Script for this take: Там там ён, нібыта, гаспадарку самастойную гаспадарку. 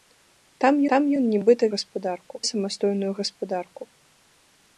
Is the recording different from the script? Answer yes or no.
no